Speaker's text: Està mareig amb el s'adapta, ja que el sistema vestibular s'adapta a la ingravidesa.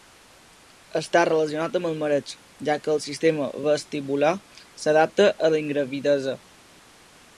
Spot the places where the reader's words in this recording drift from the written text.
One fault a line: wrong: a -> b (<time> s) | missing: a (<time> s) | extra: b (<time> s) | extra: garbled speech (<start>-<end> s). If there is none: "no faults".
wrong: mareig -> relacionat (1.3 s)
wrong: s'adapta -> mareig (2.0 s)